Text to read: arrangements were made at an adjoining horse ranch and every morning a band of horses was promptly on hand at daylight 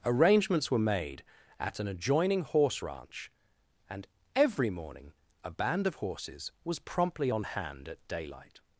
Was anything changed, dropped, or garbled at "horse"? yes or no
no